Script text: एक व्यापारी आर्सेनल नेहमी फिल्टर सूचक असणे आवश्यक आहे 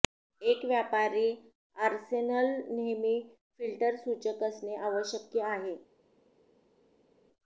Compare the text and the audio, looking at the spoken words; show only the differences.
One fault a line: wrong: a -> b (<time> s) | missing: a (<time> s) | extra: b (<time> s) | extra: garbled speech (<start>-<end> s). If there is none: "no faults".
no faults